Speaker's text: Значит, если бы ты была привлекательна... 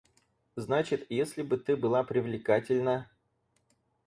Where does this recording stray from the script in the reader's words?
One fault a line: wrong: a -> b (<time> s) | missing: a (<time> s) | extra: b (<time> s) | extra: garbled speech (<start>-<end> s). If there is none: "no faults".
no faults